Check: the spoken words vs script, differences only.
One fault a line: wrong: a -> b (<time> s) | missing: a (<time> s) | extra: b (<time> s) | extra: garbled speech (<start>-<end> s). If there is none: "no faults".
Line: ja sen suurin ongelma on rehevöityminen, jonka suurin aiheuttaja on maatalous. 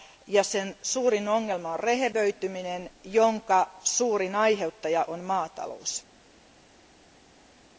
no faults